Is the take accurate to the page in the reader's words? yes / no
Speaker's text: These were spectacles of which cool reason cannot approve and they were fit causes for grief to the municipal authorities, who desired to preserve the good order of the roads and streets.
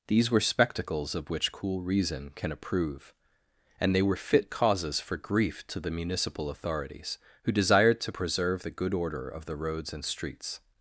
no